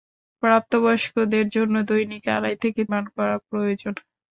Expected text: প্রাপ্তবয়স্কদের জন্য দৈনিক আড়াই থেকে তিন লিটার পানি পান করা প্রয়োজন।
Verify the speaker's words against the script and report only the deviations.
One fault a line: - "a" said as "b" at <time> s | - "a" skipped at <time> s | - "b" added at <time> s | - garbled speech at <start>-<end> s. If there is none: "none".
- "তিন লিটার পানি" skipped at 2.8 s